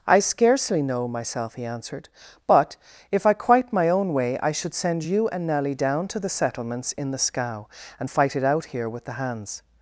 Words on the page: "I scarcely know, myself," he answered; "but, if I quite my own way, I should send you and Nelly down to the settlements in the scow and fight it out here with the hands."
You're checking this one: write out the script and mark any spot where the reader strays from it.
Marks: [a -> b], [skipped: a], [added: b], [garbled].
"I scarcely know, myself," he answered; "but, if I quite my own way, I should send you and Nelly down to the settlements in the scow and fight it out here with the hands."